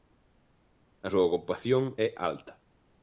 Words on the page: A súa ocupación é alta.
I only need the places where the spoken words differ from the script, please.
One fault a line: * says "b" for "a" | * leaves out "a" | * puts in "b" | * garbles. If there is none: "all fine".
all fine